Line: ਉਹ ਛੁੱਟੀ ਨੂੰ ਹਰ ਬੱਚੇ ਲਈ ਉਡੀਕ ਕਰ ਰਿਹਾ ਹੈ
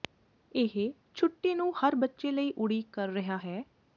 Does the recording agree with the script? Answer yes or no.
no